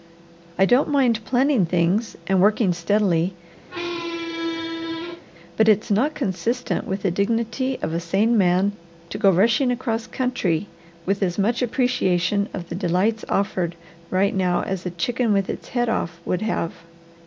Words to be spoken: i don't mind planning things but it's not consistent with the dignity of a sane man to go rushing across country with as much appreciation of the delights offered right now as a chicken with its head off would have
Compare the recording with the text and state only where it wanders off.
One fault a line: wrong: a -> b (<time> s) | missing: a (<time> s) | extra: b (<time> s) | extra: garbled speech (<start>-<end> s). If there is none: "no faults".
extra: and working steadily (2.2 s)